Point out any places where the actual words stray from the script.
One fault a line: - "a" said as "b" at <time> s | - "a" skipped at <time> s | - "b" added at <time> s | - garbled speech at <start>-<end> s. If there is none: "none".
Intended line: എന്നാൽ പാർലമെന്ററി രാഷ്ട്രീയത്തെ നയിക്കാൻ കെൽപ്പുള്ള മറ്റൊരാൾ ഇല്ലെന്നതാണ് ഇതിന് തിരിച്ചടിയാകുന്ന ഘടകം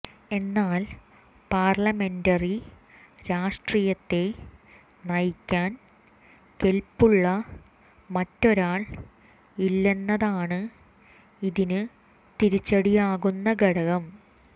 none